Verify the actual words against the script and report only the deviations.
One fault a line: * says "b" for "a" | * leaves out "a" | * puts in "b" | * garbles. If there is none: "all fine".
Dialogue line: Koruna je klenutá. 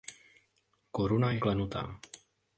all fine